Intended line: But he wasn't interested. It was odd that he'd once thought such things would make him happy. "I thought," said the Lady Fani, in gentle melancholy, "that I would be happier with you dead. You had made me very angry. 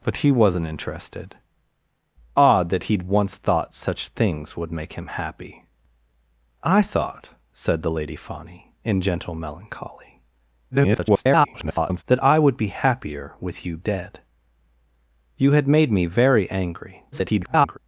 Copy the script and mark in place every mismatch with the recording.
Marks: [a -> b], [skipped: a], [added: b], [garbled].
But he wasn't interested. [skipped: It was] odd that he'd once thought such things would make him happy. "I thought," said the Lady Fani, in gentle melancholy, [garbled] "that I would be happier with you dead. You had made me very angry. [garbled]